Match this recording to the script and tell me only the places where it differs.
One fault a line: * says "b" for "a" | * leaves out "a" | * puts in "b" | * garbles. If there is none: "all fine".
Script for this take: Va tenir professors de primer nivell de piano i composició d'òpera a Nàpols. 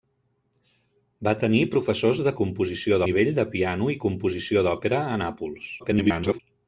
* says "composició" for "primer"
* garbles